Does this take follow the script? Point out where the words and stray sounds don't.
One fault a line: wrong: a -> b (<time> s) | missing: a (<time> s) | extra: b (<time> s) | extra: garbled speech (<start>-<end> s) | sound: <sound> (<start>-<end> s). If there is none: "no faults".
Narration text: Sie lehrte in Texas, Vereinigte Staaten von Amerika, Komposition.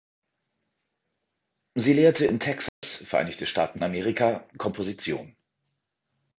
sound: dropout (2.7-2.8 s)
missing: von (3.8 s)